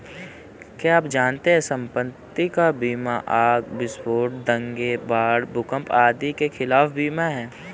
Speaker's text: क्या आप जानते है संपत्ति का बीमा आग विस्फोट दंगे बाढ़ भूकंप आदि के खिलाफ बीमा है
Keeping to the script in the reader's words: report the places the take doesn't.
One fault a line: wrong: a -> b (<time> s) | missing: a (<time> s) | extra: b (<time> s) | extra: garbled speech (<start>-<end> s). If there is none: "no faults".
no faults